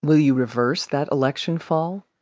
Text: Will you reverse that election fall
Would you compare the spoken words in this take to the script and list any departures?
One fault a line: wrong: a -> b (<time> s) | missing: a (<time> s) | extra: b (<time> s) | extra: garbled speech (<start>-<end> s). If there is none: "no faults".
no faults